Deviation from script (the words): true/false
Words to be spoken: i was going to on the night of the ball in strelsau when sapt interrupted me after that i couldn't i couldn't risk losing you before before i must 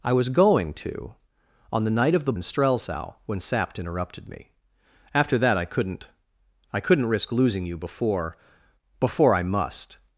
true